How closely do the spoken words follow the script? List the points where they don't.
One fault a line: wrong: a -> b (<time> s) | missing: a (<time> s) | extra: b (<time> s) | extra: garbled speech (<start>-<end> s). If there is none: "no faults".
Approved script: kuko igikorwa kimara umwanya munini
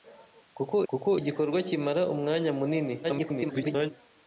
extra: kuko (0.9 s)
extra: garbled speech (3.0-3.9 s)